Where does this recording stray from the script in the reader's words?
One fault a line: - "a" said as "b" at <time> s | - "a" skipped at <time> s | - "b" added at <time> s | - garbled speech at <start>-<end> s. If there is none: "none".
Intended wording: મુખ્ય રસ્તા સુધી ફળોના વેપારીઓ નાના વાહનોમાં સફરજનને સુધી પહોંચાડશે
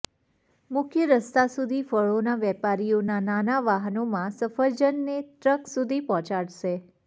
- "ટ્રક" added at 5.2 s